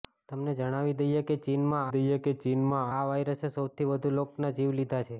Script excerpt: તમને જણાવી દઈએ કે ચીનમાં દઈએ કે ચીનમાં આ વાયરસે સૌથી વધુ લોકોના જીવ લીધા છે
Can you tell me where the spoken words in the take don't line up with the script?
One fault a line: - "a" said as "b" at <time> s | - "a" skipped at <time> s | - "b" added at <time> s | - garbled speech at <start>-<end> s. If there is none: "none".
none